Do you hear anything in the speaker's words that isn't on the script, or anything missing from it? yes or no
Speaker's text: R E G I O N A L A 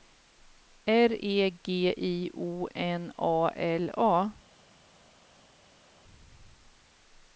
no